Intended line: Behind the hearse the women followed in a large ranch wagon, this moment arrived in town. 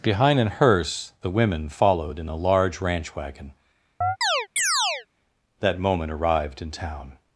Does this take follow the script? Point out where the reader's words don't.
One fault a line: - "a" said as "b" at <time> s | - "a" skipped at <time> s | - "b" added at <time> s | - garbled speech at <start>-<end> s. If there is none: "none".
- "the" said as "an" at 0.4 s
- "this" said as "that" at 5.6 s